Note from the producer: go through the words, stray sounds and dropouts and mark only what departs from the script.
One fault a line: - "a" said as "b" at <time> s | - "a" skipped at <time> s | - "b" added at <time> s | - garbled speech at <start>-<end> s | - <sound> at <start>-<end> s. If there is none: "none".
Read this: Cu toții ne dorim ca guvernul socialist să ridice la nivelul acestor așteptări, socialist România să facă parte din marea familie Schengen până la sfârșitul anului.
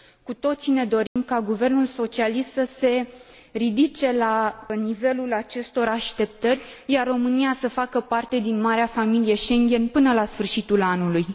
- dropout at 1.1-1.2 s
- "se" added at 2.8 s
- "socialist" said as "iar" at 6.9 s